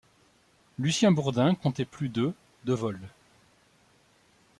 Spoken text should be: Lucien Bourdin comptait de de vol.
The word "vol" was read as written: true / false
true